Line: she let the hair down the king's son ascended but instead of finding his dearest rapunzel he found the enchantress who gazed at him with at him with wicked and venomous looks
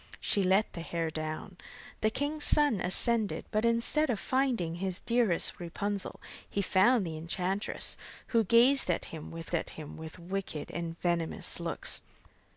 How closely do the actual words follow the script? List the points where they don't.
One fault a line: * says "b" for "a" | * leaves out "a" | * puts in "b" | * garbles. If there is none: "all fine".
all fine